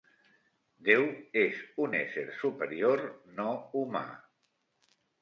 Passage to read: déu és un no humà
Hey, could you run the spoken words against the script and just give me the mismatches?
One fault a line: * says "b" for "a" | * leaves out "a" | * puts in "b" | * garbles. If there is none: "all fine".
* puts in "ésser superior"